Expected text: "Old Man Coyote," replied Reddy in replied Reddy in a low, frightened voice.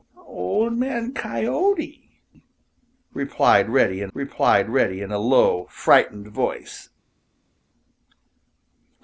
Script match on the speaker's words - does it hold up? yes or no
yes